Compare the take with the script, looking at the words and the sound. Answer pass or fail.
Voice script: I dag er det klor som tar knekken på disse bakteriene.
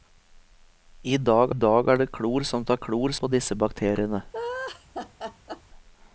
fail